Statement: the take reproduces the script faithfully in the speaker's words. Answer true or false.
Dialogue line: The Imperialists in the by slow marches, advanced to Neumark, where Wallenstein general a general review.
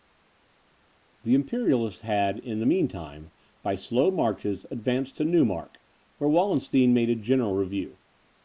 false